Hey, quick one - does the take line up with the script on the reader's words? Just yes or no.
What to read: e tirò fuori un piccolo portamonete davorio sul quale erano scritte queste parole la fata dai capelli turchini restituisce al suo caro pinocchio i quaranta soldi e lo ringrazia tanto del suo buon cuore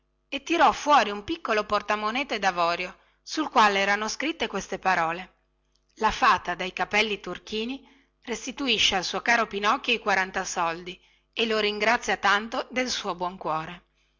yes